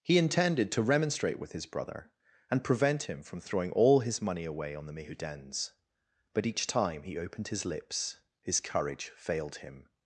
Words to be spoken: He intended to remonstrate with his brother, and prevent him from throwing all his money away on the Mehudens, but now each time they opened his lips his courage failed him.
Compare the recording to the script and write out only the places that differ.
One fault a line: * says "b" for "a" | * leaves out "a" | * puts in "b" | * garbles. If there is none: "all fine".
* leaves out "now"
* says "he" for "they"